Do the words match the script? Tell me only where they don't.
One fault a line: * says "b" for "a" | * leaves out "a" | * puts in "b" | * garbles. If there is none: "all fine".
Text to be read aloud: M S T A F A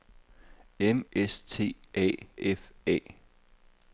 all fine